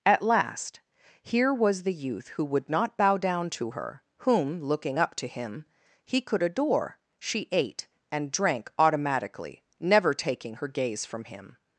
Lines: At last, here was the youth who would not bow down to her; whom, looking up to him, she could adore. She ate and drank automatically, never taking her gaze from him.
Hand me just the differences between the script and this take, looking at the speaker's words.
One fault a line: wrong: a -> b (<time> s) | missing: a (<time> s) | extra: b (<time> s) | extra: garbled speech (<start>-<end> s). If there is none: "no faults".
wrong: she -> he (6.1 s)